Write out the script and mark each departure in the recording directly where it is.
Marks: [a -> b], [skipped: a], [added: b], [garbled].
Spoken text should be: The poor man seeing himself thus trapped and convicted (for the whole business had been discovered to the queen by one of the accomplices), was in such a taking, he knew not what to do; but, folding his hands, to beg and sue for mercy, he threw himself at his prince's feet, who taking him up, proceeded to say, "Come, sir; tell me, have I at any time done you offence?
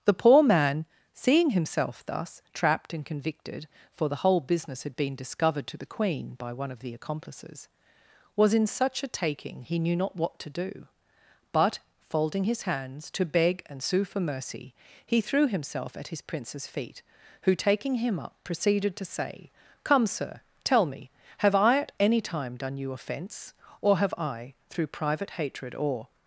The poor man seeing himself thus trapped and convicted (for the whole business had been discovered to the queen by one of the accomplices), was in such a taking, he knew not what to do; but, folding his hands, to beg and sue for mercy, he threw himself at his prince's feet, who taking him up, proceeded to say, "Come, sir; tell me, have I at any time done you offence? [added: or have I through private hatred or]